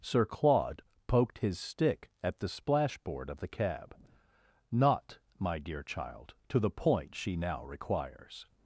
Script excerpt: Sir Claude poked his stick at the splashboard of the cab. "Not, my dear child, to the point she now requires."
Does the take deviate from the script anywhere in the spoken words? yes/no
no